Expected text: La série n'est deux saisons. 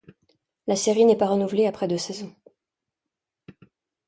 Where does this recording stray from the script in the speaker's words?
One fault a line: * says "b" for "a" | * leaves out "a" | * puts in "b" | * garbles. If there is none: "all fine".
* puts in "pas renouvelée après"